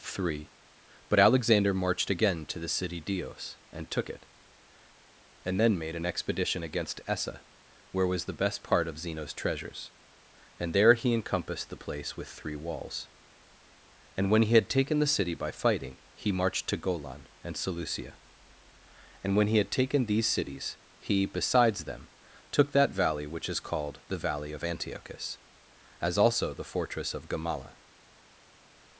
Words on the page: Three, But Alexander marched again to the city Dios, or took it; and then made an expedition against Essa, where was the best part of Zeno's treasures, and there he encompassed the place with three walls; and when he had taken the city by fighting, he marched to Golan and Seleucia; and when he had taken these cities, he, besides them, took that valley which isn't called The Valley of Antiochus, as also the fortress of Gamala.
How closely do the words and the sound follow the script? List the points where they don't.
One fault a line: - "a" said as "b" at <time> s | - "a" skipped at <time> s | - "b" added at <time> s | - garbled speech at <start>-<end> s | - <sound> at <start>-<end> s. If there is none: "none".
- "or" said as "and" at 3.7 s
- "isn't" said as "is" at 23.5 s